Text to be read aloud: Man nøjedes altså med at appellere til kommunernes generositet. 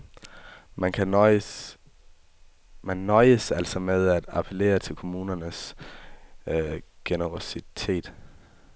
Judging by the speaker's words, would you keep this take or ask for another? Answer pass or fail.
pass